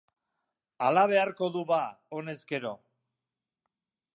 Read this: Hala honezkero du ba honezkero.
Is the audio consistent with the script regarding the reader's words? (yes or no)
no